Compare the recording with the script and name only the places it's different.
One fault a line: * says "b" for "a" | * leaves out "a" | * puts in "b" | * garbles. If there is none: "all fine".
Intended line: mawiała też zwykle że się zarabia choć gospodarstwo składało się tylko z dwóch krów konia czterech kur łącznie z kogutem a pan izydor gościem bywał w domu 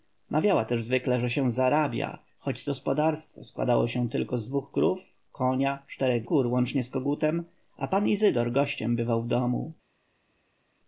all fine